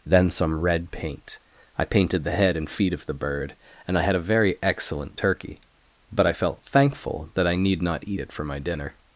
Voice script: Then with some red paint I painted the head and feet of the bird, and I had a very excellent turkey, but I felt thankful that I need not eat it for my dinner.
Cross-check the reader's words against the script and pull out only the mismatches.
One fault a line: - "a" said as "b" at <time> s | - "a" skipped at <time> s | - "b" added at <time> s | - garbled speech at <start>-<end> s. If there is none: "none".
- "with" skipped at 0.3 s